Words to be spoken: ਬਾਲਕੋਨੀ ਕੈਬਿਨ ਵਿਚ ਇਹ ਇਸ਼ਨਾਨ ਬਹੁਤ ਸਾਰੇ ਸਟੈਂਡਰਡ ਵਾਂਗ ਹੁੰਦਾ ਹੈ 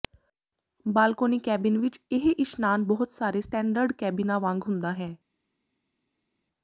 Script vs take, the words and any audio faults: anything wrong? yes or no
yes